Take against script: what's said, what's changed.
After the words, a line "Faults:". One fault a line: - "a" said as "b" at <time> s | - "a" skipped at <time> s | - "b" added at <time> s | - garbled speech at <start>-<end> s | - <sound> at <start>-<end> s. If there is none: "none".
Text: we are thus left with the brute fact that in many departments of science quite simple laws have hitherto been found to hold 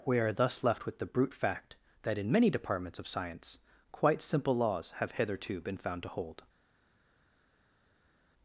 we are thus left with the brute fact that in many departments of science quite simple laws have hitherto been found to hold
Faults:
none